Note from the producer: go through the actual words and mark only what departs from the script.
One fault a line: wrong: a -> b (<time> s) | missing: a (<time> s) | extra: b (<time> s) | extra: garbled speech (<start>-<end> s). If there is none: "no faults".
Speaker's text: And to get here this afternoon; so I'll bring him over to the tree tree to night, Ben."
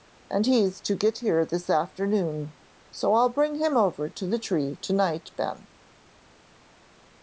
extra: he's (0.5 s)
missing: tree (4.8 s)